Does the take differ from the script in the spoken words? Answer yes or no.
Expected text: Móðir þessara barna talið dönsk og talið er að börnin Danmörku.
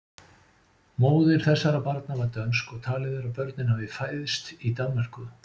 yes